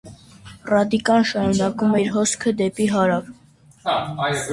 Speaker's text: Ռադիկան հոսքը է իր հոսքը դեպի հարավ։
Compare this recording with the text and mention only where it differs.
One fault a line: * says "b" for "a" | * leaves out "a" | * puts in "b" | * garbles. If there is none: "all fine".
* says "շարունակում" for "հոսքը"